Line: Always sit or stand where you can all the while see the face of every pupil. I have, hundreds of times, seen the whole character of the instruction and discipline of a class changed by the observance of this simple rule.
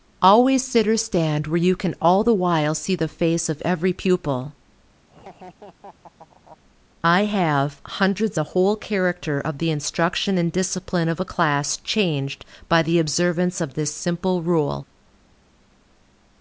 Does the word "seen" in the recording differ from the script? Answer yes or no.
yes